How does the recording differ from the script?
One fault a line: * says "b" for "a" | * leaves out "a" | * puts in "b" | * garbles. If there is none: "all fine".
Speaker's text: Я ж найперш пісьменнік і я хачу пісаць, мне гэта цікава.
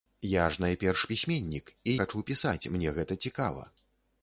* leaves out "я"